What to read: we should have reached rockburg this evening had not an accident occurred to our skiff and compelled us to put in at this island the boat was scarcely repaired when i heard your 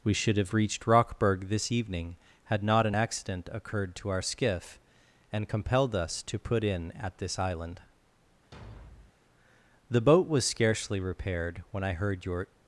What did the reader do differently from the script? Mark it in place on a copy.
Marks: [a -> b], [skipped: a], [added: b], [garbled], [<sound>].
we should have reached rockburg this evening had not an accident occurred to our skiff and compelled us to put in at this island [thud] the boat was scarcely repaired when i heard your